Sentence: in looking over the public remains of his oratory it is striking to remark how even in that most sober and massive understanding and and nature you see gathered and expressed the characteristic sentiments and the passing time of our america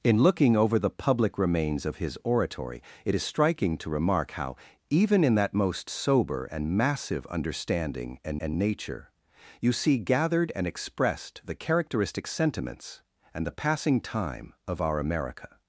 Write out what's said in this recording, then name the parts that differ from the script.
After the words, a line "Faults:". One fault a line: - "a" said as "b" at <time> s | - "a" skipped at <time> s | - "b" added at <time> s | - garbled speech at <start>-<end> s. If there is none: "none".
in looking over the public remains of his oratory it is striking to remark how even in that most sober and massive understanding and and nature you see gathered and expressed the characteristic sentiments and the passing time of our america
Faults:
none